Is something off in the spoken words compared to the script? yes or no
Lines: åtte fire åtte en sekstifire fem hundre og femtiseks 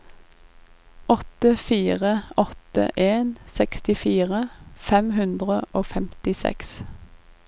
no